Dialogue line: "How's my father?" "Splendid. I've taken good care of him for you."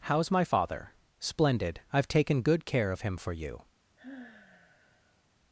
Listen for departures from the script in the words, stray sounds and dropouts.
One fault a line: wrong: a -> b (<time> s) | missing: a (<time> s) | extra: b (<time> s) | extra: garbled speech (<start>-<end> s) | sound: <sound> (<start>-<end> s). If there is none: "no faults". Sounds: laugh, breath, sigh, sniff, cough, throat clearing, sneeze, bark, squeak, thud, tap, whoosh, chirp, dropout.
sound: sigh (4.0-5.2 s)